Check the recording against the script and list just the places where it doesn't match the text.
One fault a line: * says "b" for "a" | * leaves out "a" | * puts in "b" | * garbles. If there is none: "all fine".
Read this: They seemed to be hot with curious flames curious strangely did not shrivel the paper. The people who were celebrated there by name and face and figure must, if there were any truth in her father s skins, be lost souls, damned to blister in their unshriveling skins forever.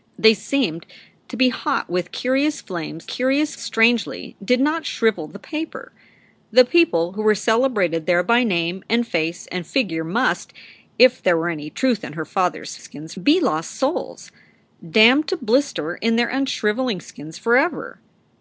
all fine